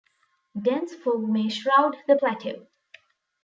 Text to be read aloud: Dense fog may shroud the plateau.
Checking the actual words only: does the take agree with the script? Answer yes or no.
yes